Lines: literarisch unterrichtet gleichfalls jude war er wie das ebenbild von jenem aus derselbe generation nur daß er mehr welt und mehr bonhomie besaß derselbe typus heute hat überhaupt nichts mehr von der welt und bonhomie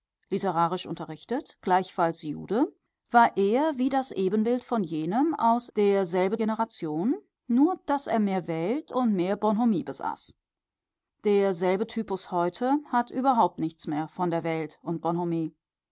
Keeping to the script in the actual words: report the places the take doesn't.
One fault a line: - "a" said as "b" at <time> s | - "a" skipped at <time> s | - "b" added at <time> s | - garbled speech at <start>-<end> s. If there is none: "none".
none